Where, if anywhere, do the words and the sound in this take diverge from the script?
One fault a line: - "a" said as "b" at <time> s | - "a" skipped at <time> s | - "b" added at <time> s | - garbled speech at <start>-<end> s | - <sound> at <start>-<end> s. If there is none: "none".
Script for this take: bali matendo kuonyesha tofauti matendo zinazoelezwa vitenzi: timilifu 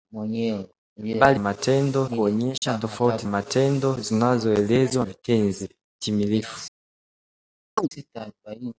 - dropout at 2.6-2.6 s
- chirp at 7.8-7.9 s